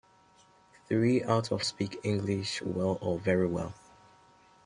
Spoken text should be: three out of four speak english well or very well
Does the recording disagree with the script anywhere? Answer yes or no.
yes